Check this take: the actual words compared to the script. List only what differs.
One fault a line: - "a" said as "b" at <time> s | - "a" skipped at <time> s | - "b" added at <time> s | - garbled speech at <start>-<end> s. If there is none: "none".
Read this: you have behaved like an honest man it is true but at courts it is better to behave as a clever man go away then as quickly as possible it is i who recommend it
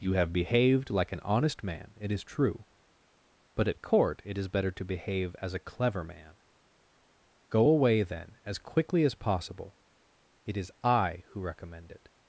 - "courts" said as "court" at 3.8 s